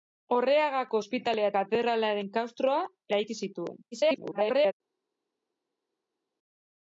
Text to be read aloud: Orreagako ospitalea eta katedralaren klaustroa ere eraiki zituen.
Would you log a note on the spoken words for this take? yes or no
yes